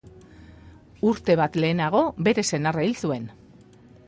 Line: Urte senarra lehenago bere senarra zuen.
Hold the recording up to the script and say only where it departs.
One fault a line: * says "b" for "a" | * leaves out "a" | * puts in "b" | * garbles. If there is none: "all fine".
* says "bat" for "senarra"
* puts in "hil"